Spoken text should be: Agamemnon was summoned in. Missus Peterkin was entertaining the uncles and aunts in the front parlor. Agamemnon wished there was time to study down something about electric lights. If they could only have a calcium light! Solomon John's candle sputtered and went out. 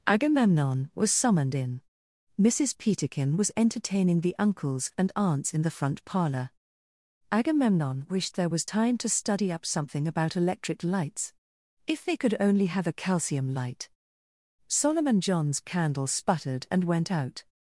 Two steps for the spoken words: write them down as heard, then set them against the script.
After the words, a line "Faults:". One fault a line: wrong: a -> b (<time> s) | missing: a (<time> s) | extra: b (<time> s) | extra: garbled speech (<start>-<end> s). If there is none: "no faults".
Agamemnon was summoned in. Missus Peterkin was entertaining the uncles and aunts in the front parlor. Agamemnon wished there was time to study up something about electric lights. If they could only have a calcium light! Solomon John's candle sputtered and went out.
Faults:
wrong: down -> up (9.5 s)